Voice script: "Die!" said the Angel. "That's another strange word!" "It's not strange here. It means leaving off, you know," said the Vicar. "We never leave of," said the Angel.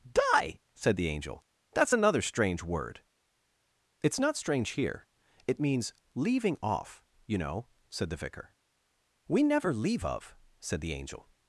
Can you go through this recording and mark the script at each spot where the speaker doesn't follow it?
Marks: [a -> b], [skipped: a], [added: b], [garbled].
"Die!" said the Angel. "That's another strange word!" "It's not strange here. It means leaving off, you know," said the Vicar. "We never leave of," said the Angel.